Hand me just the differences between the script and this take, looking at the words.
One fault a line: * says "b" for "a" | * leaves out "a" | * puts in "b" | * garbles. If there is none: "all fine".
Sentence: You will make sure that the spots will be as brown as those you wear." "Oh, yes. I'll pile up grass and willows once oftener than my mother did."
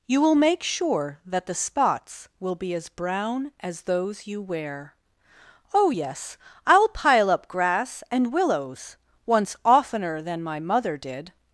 all fine